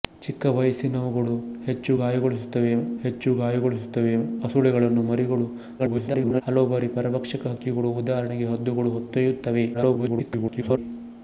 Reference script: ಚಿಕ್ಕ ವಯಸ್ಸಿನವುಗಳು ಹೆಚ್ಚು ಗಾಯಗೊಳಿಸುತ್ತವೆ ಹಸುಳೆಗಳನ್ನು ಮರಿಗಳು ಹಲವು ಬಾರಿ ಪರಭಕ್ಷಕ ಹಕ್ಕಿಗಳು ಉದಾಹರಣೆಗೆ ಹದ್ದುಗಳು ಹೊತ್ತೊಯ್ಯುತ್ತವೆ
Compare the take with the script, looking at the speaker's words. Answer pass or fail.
fail